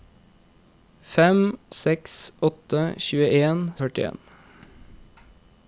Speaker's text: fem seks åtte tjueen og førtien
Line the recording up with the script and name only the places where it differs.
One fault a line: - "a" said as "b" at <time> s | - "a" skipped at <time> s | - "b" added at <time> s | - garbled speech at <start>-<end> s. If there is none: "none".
none